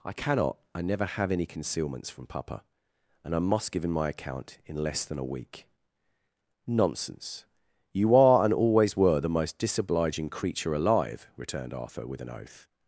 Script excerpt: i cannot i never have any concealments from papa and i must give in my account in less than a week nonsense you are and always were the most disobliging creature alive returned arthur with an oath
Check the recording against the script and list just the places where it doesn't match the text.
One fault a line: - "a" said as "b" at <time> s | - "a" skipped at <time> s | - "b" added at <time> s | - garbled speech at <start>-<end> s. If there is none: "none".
none